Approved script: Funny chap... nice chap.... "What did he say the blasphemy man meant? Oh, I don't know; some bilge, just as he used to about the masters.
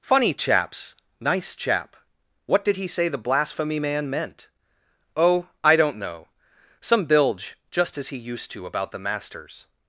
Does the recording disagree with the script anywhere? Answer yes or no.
yes